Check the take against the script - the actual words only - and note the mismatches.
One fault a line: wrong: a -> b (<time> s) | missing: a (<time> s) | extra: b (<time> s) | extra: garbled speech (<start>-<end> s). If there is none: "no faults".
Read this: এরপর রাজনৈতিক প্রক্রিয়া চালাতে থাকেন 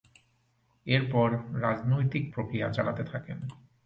no faults